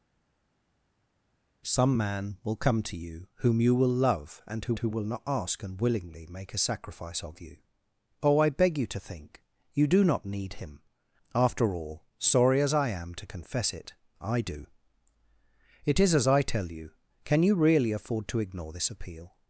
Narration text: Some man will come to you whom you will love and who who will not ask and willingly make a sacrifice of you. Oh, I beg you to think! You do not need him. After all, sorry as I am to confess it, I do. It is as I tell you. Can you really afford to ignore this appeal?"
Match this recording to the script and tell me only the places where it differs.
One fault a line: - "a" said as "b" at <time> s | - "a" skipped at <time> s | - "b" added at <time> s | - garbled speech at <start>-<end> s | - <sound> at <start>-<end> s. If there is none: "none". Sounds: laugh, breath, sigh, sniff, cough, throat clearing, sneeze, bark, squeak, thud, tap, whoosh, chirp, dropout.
none